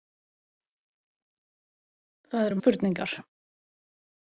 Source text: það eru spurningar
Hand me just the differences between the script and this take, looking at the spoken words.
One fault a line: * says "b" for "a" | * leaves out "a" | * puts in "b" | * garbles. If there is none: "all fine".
all fine